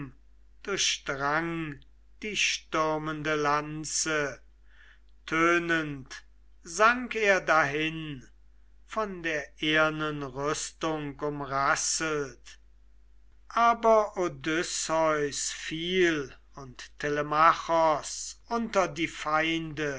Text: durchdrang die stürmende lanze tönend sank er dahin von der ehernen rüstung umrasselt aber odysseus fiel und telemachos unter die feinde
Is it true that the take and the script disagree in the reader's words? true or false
false